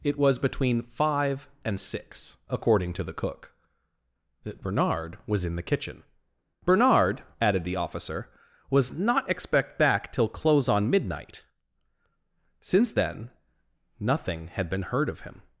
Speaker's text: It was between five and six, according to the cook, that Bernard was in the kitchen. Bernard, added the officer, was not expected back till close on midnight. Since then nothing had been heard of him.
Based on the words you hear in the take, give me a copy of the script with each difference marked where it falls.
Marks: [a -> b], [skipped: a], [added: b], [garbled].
It was between five and six, according to the cook, that Bernard was in the kitchen. Bernard, added the officer, was not [expected -> expect] back till close on midnight. Since then nothing had been heard of him.